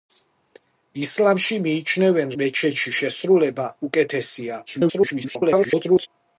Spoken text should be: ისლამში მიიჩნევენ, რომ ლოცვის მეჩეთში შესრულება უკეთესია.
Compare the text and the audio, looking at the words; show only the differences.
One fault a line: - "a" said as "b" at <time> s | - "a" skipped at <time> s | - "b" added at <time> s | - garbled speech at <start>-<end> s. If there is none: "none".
- "რომ ლოცვის" skipped at 2.3 s
- garbled speech at 4.7-6.1 s